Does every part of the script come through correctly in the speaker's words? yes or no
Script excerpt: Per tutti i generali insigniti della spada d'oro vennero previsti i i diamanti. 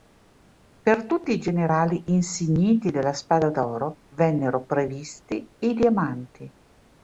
no